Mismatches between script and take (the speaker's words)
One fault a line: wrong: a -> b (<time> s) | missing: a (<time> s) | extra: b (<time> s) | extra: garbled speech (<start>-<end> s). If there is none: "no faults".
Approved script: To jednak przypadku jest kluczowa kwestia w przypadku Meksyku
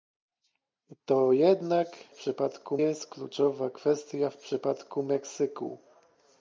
no faults